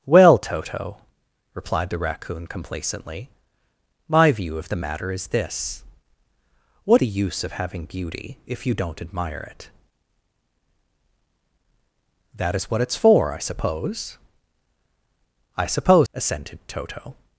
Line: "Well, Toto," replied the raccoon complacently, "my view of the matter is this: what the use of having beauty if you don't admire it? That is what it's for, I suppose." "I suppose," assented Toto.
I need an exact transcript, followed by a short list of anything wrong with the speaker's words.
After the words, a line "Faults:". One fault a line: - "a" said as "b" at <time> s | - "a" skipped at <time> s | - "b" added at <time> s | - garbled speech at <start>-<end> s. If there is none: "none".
"Well, Toto," replied the raccoon complacently, "my view of the matter is this: what the use of having beauty if you don't admire it? That is what it's for, I suppose." "I suppose," assented Toto.
Faults:
none